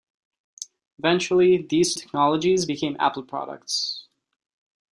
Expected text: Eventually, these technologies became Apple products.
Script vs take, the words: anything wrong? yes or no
no